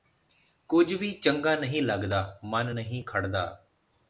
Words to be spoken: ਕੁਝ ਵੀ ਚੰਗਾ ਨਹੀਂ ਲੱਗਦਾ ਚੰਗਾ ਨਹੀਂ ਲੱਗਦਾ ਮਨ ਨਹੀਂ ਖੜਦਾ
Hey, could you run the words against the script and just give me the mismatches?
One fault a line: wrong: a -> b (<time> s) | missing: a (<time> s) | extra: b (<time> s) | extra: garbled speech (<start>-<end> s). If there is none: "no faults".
missing: ਚੰਗਾ ਨਹੀਂ ਲੱਗਦਾ (2.2 s)